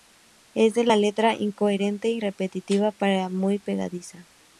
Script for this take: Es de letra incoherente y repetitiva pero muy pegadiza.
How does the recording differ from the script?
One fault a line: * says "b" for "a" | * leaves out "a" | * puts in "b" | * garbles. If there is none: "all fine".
all fine